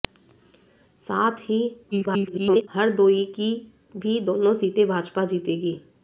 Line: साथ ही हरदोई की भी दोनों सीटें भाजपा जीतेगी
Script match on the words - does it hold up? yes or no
no